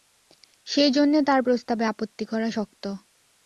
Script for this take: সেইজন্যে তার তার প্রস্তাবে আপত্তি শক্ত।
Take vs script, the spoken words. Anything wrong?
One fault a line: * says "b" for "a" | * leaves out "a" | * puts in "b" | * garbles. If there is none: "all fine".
* leaves out "তার"
* puts in "করা"